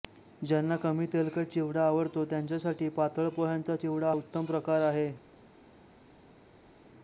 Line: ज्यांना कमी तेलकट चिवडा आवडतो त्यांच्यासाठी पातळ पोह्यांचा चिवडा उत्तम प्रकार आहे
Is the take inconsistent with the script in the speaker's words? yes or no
no